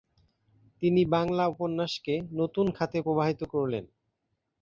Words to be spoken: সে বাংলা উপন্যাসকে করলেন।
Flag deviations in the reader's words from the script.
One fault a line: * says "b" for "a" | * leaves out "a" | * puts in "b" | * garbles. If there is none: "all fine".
* says "তিনি" for "সে"
* puts in "নতুন খাতে প্রবাহিত"